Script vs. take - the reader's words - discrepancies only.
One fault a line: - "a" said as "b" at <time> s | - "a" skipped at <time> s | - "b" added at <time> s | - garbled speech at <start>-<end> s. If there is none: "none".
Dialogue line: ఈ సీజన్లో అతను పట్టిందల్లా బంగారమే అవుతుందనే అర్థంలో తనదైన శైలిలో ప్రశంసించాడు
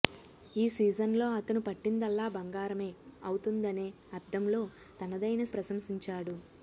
- "శైలిలో" skipped at 5.4 s